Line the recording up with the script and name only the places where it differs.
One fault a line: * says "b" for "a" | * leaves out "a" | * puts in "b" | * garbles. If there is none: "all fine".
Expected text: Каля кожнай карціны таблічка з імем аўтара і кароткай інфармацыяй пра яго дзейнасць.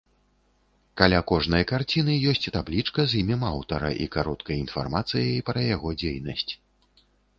* puts in "ёсць"